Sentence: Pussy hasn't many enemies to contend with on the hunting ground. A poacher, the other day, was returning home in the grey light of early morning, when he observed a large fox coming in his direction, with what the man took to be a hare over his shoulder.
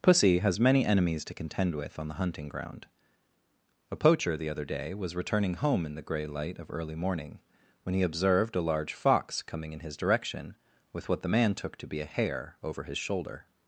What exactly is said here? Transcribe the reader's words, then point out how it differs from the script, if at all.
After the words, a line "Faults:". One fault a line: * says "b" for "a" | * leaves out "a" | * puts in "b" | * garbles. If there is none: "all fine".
Pussy has many enemies to contend with on the hunting ground. A poacher, the other day, was returning home in the grey light of early morning, when he observed a large fox coming in his direction, with what the man took to be a hare over his shoulder.
Faults:
* says "has" for "hasn't"